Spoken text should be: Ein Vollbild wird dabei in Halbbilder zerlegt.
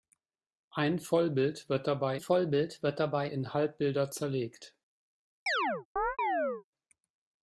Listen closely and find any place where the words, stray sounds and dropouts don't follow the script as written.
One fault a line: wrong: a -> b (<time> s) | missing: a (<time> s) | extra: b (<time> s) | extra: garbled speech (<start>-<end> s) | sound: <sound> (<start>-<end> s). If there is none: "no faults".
extra: Vollbild wird dabei (2.2 s)
sound: chirp (5.5-6.6 s)